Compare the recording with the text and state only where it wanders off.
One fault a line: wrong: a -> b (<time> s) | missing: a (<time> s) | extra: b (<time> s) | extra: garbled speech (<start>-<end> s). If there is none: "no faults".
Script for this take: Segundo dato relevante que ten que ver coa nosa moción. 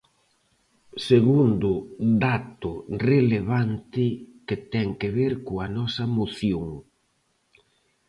no faults